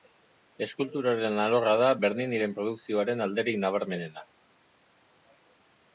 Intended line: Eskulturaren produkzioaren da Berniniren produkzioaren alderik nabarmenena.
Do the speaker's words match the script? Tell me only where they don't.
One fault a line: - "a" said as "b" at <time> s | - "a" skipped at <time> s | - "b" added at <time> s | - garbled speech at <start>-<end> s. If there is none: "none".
- "produkzioaren" said as "alorra" at 1.4 s